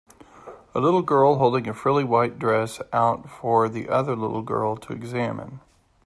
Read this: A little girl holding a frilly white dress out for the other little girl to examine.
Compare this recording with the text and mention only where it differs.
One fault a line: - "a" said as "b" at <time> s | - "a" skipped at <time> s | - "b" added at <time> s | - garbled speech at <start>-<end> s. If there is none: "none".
none